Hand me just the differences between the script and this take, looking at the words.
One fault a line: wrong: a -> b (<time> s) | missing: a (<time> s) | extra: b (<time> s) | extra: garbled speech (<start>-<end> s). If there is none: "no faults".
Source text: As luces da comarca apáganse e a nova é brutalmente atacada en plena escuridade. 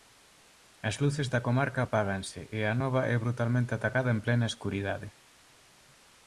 no faults